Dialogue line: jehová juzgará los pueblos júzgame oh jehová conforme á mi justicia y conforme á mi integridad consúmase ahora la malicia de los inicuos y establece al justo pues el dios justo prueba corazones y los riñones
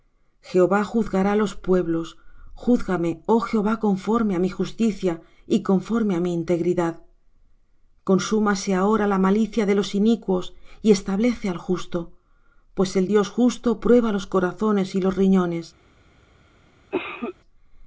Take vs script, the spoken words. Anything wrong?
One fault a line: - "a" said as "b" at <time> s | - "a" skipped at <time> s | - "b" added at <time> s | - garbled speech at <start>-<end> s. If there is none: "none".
- "los" added at 14.1 s